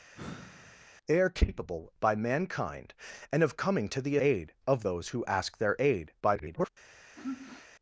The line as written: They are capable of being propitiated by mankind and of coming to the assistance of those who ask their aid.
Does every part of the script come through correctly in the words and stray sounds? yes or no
no